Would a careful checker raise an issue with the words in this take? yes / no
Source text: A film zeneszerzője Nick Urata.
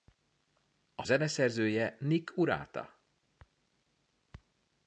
yes